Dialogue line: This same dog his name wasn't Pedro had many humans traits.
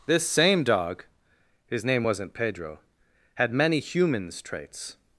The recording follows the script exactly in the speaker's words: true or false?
true